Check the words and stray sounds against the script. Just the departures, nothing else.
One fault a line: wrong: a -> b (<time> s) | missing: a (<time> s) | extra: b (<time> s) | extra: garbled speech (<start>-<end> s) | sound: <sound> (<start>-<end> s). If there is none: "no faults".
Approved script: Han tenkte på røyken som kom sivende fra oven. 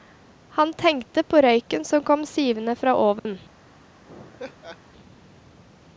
sound: dropout (3.2-3.3 s)
sound: laugh (4.0-4.8 s)